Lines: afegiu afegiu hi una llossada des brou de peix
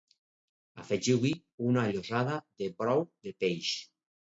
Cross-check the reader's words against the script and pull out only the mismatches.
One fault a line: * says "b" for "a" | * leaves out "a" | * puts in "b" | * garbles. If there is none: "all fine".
* leaves out "afegiu"
* says "de" for "des"